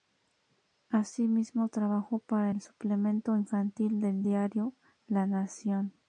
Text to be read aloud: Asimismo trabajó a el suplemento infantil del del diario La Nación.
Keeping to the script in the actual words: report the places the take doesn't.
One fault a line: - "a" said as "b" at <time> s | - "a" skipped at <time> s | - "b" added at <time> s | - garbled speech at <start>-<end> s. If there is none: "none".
- "a" said as "para" at 2.2 s
- "del" skipped at 4.2 s